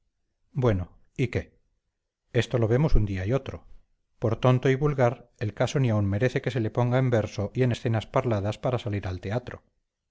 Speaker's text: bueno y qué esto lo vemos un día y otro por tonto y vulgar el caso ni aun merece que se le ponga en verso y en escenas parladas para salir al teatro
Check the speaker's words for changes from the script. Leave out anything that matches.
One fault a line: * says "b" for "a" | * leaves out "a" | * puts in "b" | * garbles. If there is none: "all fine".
all fine